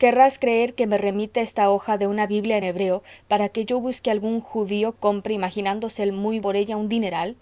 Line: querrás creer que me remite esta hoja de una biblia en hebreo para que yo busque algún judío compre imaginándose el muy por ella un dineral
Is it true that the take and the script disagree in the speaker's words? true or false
false